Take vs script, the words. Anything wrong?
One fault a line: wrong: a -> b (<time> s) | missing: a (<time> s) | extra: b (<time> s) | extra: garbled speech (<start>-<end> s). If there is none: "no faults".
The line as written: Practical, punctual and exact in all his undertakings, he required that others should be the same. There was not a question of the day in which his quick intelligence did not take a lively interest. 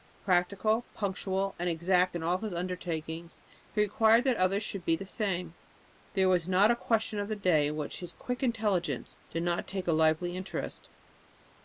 no faults